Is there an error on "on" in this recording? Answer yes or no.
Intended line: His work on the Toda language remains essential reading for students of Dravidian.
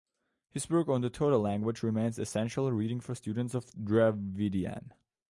no